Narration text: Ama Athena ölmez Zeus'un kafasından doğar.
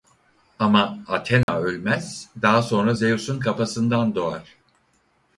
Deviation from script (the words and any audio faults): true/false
true